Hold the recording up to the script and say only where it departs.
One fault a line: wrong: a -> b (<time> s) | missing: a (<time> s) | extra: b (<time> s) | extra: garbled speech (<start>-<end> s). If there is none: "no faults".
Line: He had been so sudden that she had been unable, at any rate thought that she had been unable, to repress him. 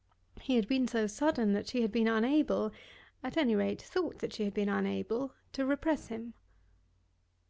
no faults